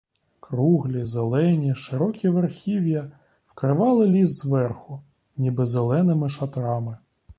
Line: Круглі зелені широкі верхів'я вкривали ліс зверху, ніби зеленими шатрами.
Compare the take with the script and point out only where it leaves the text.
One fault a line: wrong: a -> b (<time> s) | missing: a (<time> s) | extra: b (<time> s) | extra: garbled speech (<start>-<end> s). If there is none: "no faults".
no faults